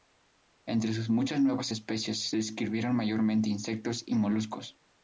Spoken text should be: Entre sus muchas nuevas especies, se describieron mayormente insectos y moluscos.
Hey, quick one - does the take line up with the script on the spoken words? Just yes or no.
yes